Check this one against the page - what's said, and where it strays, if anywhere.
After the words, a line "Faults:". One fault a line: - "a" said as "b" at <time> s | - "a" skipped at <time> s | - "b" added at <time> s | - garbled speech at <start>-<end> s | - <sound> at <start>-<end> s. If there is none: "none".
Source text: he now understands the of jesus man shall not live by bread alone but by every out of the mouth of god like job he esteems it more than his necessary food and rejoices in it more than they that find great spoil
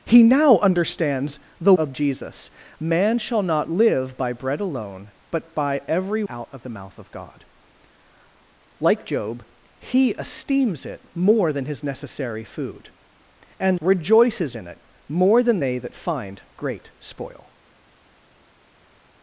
he now understands the of jesus man shall not live by bread alone but by every out of the mouth of god like job he esteems it more than his necessary food and rejoices in it more than they that find great spoil
Faults:
none